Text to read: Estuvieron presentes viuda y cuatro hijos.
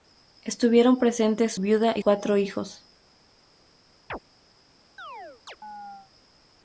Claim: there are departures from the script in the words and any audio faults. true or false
true